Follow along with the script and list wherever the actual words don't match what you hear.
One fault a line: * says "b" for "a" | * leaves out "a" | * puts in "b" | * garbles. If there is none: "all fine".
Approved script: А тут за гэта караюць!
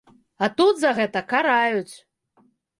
all fine